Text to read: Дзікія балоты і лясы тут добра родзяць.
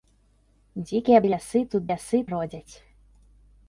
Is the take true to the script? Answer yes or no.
no